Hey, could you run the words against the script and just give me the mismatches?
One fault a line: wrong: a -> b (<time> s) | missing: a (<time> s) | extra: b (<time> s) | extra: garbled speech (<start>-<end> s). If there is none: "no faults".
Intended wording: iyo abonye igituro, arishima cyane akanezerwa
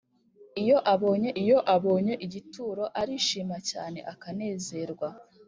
extra: iyo abonye (1.4 s)